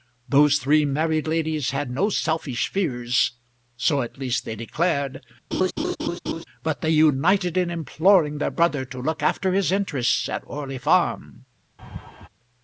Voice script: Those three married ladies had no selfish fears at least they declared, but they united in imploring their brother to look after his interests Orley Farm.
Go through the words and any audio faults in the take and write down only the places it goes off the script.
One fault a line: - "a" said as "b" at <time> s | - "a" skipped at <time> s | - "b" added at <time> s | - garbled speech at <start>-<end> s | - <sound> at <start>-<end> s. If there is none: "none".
- "so" added at 3.8 s
- laugh at 5.5-6.4 s
- "at" added at 10.3 s
- laugh at 11.8-12.3 s